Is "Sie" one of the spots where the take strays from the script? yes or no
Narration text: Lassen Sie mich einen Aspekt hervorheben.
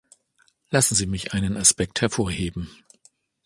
no